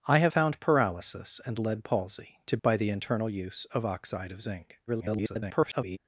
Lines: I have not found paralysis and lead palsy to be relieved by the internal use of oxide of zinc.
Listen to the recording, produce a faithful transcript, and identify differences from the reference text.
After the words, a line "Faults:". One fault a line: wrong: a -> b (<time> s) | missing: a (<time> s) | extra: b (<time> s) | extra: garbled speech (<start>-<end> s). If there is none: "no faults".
I have found paralysis and lead palsy to by the internal use of oxide of zinc. [garbled]
Faults:
missing: not (0.3 s)
missing: be relieved (2.6 s)
extra: garbled speech (4.9-6.0 s)